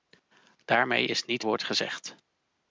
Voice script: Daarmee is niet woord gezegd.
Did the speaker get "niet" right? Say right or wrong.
right